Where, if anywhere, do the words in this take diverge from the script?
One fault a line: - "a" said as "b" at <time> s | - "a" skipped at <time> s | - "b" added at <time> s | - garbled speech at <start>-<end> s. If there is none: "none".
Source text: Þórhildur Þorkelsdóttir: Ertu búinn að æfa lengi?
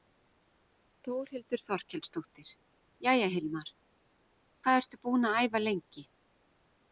- "Jæja Hilmar hvað" added at 3.1 s